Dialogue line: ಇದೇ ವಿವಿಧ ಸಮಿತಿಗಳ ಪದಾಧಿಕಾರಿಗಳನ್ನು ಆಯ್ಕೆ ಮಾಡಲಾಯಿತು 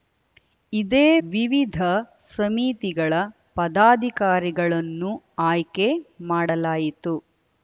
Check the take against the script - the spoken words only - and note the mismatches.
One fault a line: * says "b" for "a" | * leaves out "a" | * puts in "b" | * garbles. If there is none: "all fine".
all fine